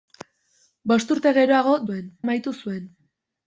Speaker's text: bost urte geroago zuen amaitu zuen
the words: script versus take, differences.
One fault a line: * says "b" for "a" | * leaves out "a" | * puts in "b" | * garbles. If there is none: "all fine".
all fine